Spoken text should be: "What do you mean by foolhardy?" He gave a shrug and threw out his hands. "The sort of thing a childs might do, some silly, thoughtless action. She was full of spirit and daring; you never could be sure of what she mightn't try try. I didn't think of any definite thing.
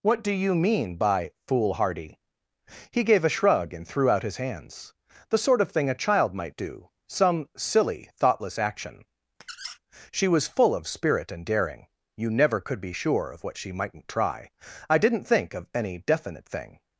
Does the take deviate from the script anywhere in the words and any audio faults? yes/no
yes